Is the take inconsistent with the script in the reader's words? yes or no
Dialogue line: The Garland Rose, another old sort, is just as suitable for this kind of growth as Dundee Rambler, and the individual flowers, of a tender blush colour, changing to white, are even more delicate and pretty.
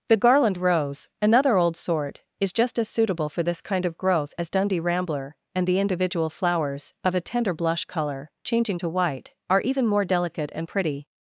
no